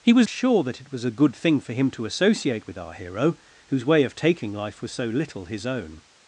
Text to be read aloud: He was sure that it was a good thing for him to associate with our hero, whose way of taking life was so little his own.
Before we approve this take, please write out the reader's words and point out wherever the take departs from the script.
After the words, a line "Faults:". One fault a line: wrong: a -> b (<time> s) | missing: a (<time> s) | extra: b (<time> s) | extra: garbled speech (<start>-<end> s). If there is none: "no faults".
He was sure that it was a good thing for him to associate with our hero, whose way of taking life was so little his own.
Faults:
no faults